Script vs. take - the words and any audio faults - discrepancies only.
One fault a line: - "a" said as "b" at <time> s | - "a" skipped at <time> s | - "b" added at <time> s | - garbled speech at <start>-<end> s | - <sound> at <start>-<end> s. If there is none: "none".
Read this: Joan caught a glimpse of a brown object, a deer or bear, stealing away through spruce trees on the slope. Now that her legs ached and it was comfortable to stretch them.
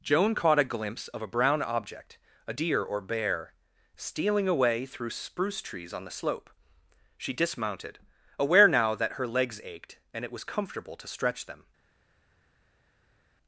- "She dismounted aware" added at 7.2 s